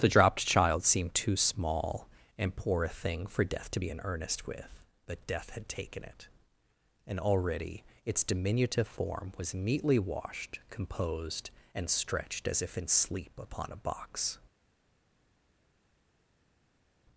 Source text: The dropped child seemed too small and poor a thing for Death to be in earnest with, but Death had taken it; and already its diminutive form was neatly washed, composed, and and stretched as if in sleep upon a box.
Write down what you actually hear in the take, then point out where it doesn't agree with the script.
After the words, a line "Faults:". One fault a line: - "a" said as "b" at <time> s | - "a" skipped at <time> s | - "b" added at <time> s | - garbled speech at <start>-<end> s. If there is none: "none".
The dropped child seemed too small and poor a thing for Death to be in earnest with, but Death had taken it; and already its diminutive form was neatly washed, composed, and stretched as if in sleep upon a box.
Faults:
- "and" skipped at 11.9 s